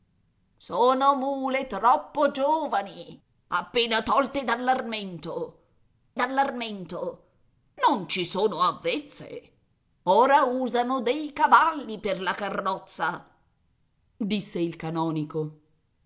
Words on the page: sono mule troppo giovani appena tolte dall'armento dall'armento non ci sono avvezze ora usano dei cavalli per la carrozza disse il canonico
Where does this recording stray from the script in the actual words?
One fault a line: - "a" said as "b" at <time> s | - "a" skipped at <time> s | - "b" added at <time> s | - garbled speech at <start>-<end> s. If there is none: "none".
none